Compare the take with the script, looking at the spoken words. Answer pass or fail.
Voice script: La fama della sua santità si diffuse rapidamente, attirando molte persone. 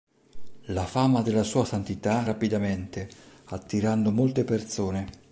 fail